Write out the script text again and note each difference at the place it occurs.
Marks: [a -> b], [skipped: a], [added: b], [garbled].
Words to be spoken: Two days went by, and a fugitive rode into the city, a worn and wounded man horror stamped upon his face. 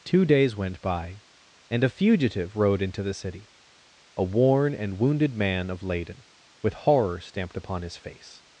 Two days went by, and a fugitive rode into the city, a worn and wounded man [added: of Leyden with] horror stamped upon his face.